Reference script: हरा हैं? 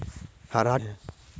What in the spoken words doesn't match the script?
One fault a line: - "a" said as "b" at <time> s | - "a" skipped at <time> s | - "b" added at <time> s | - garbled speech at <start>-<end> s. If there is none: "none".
none